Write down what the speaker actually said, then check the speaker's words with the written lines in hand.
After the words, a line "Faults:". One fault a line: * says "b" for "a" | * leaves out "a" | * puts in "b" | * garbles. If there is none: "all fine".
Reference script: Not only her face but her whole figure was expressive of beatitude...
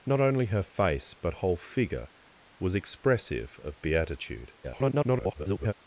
Not only her face but whole figure was expressive of beatitude... [garbled]
Faults:
* leaves out "her"
* garbles